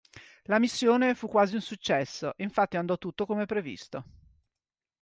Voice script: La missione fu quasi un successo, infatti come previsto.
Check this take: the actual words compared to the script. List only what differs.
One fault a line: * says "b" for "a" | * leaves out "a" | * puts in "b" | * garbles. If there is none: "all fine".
* puts in "andò tutto"